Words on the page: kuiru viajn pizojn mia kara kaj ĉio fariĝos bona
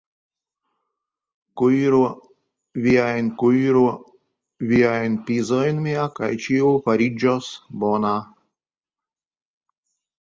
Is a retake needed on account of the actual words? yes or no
yes